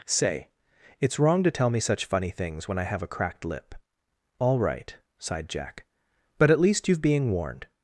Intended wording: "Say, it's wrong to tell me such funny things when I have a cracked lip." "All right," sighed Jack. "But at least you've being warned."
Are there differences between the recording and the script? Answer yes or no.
no